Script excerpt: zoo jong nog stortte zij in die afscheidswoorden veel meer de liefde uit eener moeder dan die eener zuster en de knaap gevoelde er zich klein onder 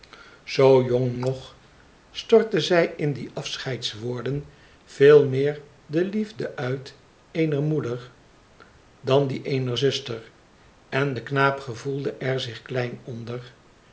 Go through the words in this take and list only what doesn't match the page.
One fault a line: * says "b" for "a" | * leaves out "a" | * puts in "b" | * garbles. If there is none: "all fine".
all fine